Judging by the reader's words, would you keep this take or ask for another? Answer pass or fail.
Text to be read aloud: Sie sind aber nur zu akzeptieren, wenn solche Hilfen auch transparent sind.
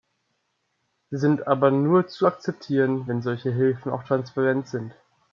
pass